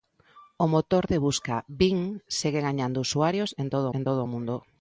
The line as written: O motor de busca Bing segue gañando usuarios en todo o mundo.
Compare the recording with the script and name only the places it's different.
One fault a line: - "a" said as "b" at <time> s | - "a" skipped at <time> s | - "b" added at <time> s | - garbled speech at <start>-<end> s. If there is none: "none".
- "en todo" added at 3.9 s